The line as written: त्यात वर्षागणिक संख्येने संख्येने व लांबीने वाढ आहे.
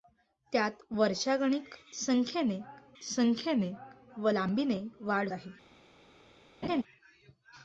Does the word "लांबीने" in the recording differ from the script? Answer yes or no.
no